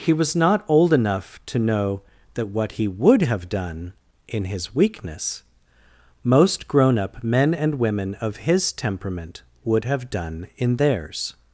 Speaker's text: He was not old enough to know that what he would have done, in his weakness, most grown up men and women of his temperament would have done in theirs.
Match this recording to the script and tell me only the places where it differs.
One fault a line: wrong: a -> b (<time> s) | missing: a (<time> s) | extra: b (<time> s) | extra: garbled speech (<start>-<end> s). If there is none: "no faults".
no faults